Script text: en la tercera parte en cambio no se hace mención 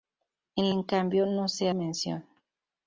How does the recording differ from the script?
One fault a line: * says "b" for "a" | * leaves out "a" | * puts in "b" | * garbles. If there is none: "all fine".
* leaves out "la tercera parte"
* leaves out "hace"